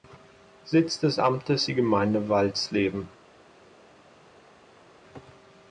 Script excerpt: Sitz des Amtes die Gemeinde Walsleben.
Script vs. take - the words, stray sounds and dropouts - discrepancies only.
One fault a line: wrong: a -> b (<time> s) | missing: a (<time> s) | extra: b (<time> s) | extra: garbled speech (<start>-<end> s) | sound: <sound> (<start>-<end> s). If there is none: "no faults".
no faults